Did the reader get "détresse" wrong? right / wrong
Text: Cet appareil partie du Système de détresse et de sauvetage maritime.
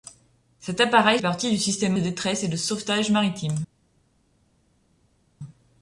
right